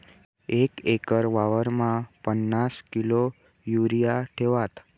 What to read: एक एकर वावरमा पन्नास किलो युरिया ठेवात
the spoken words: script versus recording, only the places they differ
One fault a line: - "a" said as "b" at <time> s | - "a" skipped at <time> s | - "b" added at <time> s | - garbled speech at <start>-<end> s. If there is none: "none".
none